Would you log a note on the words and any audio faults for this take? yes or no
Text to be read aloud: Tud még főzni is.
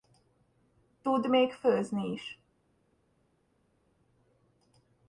no